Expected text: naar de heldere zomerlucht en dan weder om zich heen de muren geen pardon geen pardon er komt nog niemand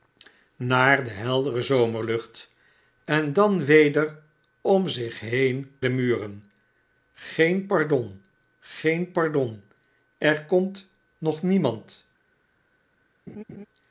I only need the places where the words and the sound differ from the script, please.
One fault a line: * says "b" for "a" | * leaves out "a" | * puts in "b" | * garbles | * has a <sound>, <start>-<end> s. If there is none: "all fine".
* has a laugh, 13.3-13.7 s